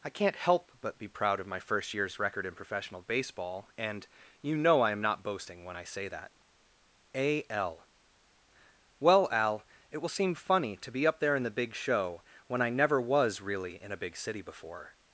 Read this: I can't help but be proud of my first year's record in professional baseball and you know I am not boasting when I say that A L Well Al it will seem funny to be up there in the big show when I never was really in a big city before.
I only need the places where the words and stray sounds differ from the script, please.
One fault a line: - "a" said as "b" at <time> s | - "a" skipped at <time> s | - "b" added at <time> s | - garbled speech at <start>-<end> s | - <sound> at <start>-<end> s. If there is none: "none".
none